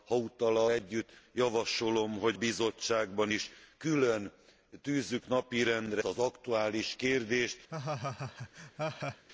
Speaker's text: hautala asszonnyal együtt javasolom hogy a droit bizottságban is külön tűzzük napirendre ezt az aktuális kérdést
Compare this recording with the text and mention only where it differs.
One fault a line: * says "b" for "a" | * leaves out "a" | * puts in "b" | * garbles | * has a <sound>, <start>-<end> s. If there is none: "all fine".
* leaves out "asszonnyal"
* leaves out "a droit"
* leaves out "ezt"
* has a laugh, 7.7-9.2 s